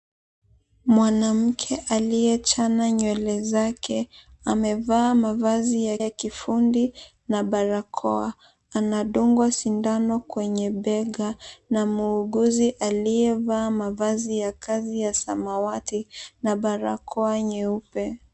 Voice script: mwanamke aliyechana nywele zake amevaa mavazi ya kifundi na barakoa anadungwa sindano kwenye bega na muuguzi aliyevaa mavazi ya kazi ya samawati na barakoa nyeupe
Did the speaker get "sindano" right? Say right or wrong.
right